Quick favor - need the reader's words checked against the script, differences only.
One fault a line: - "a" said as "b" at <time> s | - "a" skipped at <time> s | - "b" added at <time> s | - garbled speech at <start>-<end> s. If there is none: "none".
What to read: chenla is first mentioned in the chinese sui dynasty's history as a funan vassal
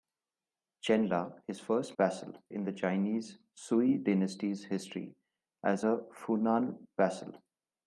- "mentioned" said as "vassal" at 2.0 s